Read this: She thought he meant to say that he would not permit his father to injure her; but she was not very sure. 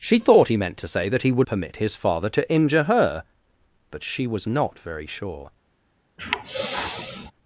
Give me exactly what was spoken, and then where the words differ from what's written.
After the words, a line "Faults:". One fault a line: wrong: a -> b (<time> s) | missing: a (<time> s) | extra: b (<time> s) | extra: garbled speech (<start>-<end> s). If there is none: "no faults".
She thought he meant to say that he would permit his father to injure her; but she was not very sure.
Faults:
missing: not (1.5 s)